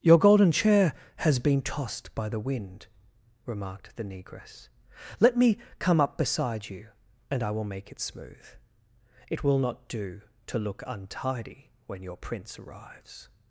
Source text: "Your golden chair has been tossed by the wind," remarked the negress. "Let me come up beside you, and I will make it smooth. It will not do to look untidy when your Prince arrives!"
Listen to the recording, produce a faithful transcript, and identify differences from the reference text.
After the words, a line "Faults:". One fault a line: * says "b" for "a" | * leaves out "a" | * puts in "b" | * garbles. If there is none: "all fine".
"Your golden chair has been tossed by the wind," remarked the negress. "Let me come up beside you, and I will make it smooth. It will not do to look untidy when your Prince arrives!"
Faults:
all fine